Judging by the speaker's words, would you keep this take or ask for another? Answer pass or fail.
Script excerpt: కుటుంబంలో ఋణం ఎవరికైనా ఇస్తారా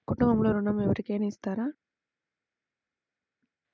pass